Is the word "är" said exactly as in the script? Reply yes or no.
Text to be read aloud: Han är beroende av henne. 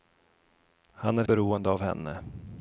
yes